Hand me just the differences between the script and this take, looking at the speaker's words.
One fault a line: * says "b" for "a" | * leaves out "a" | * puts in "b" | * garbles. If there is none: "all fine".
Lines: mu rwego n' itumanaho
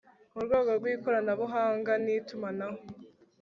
* puts in "rw ikoranabuhanga"